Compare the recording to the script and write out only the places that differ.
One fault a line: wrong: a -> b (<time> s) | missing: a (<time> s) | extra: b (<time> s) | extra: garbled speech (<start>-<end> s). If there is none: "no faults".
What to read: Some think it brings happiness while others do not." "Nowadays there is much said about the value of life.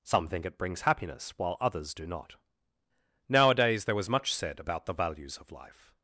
wrong: is -> was (4.0 s)
wrong: value -> values (4.9 s)